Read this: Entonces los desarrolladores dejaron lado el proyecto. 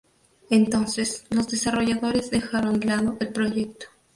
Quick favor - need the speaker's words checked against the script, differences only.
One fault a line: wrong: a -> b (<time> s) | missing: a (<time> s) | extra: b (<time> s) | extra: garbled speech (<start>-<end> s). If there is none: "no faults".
no faults